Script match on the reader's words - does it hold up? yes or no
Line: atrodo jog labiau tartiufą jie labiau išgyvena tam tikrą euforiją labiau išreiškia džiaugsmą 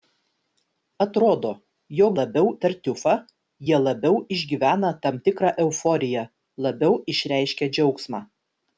yes